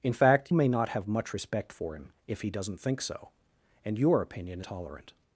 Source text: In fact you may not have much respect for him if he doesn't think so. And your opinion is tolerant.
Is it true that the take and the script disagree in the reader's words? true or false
true